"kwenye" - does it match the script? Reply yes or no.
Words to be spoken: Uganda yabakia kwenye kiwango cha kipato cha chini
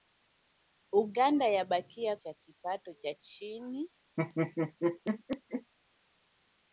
no